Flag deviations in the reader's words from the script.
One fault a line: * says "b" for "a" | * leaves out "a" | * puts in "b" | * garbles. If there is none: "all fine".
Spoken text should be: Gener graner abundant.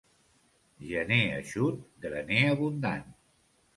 * puts in "eixut"